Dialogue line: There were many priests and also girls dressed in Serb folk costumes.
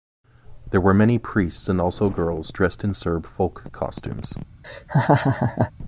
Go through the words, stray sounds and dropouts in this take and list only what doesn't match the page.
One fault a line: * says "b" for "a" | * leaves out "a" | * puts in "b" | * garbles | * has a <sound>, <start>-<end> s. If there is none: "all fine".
* has a laugh, 4.6-5.7 s